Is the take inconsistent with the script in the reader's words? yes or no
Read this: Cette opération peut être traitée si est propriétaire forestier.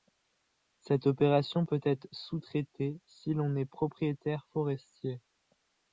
yes